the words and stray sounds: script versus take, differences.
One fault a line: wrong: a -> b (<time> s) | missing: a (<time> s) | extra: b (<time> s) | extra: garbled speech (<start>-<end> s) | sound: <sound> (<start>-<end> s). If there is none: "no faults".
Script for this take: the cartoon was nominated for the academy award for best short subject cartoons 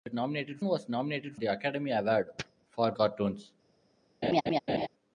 wrong: cartoon -> nominated (0.1 s)
missing: for (1.4 s)
missing: best short subject (2.9 s)
sound: laugh (4.2-4.9 s)